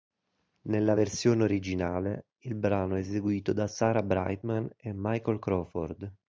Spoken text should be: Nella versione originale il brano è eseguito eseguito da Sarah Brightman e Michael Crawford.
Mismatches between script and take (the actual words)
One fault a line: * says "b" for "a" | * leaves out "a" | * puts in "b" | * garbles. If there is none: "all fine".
* leaves out "eseguito"